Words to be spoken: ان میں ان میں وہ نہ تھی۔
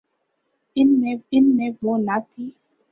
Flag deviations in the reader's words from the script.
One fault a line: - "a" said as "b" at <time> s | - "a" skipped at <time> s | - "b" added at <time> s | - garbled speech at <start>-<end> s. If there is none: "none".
none